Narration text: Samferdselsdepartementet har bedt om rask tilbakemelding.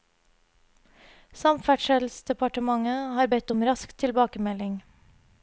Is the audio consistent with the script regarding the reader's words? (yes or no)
yes